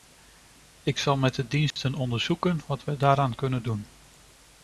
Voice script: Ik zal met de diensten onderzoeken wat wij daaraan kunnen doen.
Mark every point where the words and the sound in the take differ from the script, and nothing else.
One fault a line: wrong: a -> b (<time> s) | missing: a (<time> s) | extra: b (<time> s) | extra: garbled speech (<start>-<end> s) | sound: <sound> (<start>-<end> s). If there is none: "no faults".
sound: dropout (1.7-1.8 s)